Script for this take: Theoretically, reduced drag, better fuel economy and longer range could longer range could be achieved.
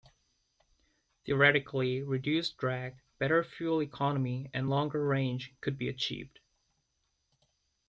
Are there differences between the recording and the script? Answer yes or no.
yes